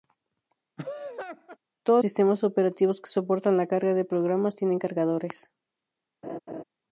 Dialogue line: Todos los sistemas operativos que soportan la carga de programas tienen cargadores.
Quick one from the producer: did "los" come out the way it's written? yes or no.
no